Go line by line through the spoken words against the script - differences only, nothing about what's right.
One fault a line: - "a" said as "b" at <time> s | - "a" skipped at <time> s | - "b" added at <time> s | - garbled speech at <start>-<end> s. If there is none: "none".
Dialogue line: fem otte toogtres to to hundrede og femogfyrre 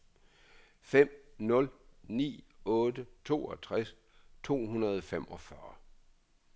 - "nul ni" added at 1.4 s
- "to" skipped at 4.6 s